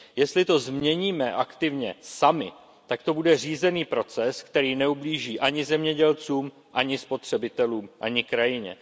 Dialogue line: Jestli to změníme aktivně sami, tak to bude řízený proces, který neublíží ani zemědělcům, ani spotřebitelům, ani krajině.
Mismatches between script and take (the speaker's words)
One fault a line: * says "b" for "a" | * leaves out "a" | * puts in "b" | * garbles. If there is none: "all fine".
all fine